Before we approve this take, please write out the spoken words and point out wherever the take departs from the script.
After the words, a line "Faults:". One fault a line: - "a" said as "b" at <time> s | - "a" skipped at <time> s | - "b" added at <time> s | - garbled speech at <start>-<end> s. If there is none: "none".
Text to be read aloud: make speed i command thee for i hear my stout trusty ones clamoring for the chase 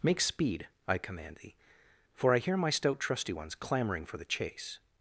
make speed i command thee for i hear my stout trusty ones clamoring for the chase
Faults:
none